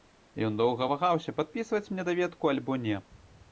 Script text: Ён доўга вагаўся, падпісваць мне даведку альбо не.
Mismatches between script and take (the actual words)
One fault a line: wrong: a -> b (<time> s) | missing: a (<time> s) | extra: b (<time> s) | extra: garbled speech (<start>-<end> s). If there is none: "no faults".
no faults